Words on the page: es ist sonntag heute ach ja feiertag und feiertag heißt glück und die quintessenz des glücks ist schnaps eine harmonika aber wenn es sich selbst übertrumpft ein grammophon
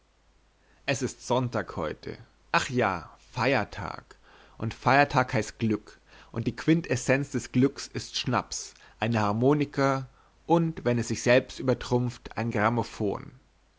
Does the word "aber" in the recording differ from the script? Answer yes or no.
yes